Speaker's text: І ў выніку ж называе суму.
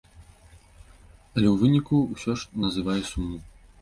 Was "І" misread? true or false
true